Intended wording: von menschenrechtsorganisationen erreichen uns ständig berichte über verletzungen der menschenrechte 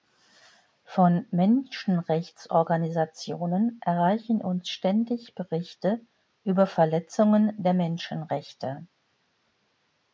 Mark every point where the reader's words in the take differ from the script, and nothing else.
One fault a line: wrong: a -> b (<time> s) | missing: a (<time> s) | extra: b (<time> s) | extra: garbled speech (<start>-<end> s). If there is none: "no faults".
no faults